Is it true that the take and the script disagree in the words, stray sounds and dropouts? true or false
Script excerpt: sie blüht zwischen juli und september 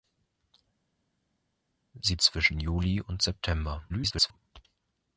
true